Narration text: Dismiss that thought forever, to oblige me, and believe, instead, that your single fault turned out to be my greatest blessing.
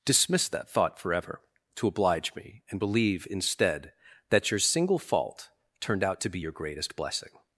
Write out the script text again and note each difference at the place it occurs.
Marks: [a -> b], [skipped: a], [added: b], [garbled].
Dismiss that thought forever, to oblige me, and believe, instead, that your single fault turned out to be [my -> your] greatest blessing.